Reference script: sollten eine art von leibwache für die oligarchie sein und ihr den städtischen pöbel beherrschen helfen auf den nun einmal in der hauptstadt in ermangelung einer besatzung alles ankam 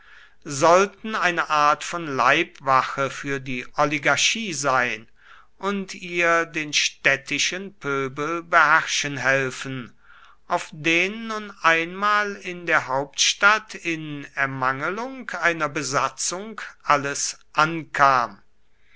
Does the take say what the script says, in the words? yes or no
yes